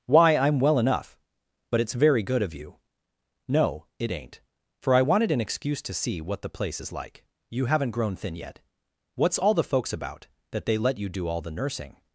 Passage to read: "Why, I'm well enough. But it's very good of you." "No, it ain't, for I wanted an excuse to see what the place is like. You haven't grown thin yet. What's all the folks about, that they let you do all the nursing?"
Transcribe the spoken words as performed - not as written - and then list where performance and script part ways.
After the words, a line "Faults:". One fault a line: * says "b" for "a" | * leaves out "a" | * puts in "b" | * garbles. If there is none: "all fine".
"Why, I'm well enough. But it's very good of you." "No, it ain't, for I wanted an excuse to see what the place is like. You haven't grown thin yet. What's all the folks about, that they let you do all the nursing?"
Faults:
all fine